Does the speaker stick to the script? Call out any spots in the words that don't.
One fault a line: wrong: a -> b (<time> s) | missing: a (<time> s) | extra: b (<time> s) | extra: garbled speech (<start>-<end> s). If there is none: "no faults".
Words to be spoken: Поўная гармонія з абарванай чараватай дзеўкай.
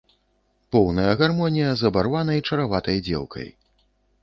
no faults